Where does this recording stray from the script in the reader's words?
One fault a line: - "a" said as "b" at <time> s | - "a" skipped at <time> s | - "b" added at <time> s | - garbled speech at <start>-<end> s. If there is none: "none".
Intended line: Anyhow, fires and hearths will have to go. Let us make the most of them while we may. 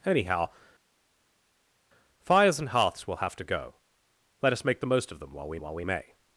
- "while we" added at 5.6 s